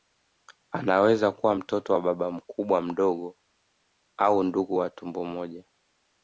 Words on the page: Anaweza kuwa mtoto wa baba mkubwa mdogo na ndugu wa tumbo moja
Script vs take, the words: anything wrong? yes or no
yes